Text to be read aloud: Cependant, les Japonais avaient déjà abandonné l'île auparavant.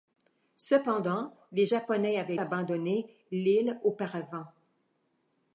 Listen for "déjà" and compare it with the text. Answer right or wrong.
wrong